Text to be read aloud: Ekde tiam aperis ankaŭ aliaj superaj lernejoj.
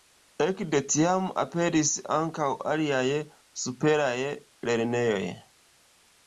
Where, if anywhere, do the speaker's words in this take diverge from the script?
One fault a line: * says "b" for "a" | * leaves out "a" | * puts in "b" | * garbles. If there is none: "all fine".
all fine